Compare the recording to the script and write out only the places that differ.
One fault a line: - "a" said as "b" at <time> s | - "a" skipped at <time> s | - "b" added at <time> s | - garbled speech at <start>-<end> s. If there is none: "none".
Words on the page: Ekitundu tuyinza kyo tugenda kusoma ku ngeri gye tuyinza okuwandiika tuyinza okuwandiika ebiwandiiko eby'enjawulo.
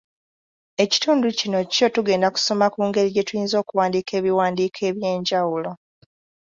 - "tuyinza" said as "kino" at 1.4 s
- "tuyinza okuwandiika" skipped at 4.1 s